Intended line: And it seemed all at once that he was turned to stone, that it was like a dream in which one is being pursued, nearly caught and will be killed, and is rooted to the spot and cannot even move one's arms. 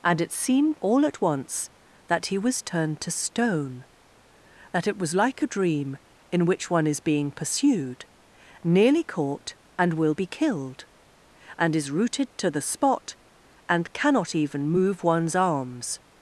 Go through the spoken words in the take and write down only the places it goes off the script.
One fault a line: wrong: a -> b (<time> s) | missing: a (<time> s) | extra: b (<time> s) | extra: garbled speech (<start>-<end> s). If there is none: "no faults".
no faults